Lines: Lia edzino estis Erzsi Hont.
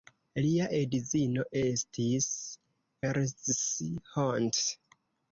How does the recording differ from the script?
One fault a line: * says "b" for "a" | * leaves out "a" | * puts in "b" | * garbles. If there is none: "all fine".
all fine